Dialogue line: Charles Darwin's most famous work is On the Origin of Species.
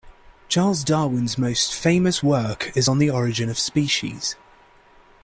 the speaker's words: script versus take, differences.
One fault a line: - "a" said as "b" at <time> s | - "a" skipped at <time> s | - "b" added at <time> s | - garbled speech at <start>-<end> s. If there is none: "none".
none